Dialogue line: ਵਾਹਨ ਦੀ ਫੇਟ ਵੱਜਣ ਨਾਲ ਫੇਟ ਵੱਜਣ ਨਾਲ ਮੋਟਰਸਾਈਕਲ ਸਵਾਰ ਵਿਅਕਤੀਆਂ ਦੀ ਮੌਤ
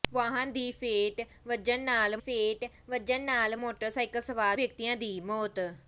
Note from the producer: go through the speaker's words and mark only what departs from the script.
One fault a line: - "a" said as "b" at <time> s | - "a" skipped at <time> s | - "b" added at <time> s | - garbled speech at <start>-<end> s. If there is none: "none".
none